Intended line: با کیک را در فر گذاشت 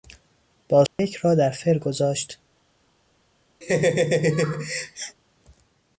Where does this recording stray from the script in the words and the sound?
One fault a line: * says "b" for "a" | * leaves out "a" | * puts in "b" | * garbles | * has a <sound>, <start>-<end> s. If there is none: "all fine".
* has a dropout, 0.9-1.0 s
* has a laugh, 3.6-5.2 s